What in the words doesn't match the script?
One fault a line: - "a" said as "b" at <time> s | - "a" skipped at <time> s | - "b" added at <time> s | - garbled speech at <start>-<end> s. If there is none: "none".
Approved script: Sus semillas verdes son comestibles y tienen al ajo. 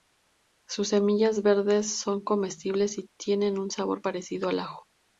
- "un sabor parecido" added at 3.6 s